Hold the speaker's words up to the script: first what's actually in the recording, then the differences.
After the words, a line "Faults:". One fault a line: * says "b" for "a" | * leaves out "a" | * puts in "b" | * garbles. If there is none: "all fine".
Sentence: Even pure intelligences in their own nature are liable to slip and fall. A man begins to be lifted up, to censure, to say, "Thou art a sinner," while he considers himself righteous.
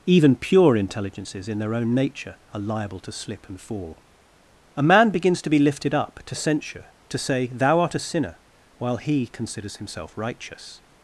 Even pure intelligences in their own nature are liable to slip and fall. A man begins to be lifted up, to censure, to say, "Thou art a sinner," while he considers himself righteous.
Faults:
all fine